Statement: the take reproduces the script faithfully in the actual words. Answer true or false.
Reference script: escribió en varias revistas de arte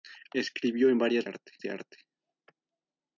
false